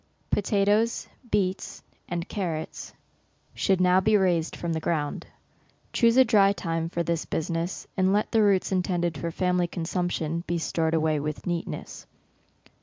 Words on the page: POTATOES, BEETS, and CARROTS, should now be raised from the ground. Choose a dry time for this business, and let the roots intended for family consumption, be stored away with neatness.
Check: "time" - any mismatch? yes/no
no